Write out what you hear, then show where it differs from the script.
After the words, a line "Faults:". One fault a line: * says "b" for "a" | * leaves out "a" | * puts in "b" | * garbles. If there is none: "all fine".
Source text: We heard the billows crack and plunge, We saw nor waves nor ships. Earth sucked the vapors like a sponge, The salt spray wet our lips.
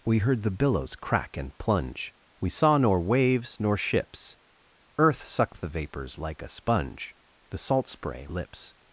We heard the billows crack and plunge, We saw nor waves nor ships. Earth sucked the vapors like a sponge, The salt spray lips.
Faults:
* leaves out "wet our"